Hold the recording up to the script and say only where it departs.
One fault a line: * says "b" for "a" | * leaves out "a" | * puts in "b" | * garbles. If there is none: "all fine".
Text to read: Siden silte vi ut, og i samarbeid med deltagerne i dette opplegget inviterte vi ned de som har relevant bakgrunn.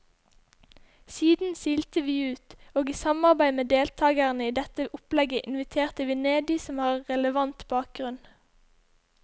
all fine